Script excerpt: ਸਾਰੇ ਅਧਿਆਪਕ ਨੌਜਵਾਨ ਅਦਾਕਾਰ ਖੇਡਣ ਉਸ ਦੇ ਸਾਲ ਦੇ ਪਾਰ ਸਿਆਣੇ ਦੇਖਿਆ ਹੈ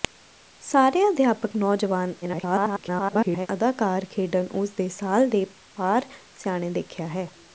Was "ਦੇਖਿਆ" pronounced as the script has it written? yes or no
yes